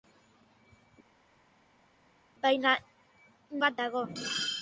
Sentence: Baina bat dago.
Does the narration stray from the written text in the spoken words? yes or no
no